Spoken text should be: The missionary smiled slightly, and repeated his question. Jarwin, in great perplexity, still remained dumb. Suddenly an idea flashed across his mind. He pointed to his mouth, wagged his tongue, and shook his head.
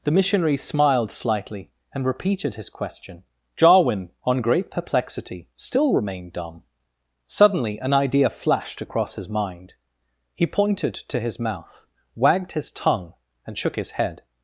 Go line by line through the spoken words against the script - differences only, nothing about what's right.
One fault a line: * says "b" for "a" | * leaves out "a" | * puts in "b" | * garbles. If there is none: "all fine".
* says "on" for "in"